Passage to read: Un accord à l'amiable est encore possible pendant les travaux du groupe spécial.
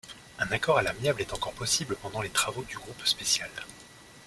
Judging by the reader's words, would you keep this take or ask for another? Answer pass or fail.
pass